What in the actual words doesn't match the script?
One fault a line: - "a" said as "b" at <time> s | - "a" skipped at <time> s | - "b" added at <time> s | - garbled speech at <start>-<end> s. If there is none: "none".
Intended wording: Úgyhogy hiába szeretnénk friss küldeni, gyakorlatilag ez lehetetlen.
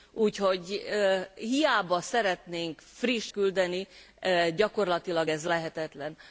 none